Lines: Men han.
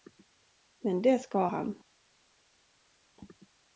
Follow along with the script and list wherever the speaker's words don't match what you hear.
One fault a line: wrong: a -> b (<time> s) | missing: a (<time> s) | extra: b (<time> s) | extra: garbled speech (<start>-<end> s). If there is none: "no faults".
extra: det ska (1.0 s)